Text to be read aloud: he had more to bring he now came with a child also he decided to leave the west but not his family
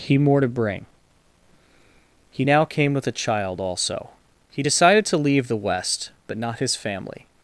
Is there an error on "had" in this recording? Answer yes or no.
yes